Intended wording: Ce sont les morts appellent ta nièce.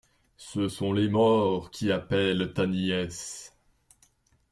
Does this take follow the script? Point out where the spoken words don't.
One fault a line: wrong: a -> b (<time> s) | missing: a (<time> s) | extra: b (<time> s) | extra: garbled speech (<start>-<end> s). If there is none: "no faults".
extra: qui (1.7 s)